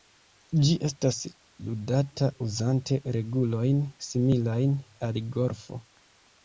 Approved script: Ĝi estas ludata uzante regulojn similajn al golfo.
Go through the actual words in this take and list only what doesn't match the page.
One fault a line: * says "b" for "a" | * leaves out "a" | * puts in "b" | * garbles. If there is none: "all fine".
all fine